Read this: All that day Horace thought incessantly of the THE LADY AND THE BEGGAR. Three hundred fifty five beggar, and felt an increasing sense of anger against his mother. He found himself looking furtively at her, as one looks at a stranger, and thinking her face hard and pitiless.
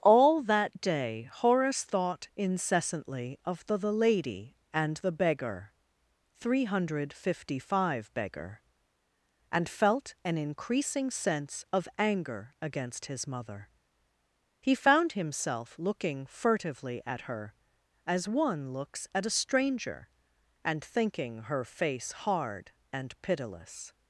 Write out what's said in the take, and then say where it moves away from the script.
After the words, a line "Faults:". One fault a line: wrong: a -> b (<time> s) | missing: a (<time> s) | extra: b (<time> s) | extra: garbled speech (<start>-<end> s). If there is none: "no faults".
All that day Horace thought incessantly of the THE LADY AND THE BEGGAR. Three hundred fifty five beggar, and felt an increasing sense of anger against his mother. He found himself looking furtively at her, as one looks at a stranger, and thinking her face hard and pitiless.
Faults:
no faults